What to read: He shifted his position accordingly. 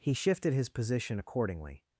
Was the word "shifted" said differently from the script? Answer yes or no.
no